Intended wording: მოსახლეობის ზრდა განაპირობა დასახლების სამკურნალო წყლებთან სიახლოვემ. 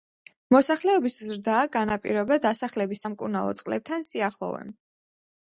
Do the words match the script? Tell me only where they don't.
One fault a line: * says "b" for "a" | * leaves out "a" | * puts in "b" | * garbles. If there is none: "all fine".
all fine